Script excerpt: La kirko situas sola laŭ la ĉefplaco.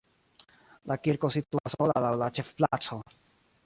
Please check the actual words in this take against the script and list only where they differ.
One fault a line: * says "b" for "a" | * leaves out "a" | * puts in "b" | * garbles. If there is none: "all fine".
all fine